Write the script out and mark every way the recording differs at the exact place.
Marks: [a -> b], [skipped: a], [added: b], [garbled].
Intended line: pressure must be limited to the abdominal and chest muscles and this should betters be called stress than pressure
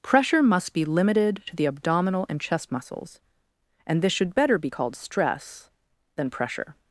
pressure must be limited to the abdominal and chest muscles and this should [betters -> better] be called stress than pressure